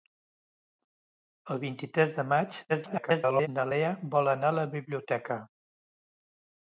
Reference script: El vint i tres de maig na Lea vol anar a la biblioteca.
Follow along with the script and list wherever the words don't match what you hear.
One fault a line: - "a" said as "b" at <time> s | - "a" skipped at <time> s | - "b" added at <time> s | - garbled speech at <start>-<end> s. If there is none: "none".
- garbled speech at 2.7-3.5 s